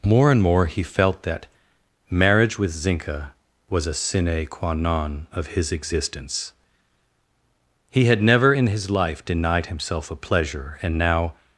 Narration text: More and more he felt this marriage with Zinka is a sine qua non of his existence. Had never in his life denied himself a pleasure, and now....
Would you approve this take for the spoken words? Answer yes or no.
no